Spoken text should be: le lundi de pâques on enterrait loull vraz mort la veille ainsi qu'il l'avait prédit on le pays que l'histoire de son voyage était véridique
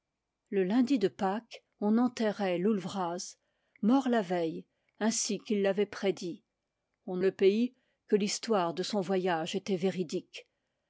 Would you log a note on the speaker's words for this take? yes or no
no